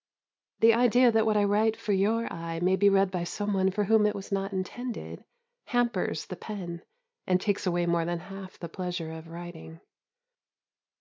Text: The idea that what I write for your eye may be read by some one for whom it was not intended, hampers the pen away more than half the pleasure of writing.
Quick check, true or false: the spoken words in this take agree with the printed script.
false